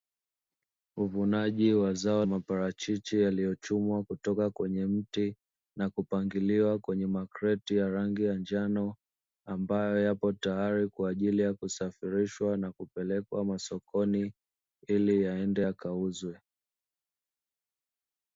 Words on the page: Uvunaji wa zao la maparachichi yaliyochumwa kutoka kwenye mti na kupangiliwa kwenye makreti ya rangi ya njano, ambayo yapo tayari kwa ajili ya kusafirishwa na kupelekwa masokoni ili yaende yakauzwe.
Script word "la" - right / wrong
wrong